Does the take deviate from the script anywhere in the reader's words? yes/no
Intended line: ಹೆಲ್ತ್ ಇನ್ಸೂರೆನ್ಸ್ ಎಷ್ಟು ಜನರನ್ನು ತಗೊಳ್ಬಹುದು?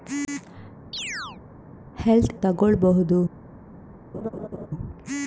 yes